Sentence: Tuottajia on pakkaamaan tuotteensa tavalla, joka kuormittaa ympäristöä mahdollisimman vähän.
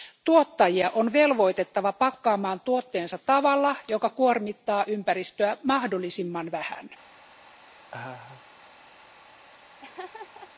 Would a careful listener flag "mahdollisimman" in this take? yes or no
no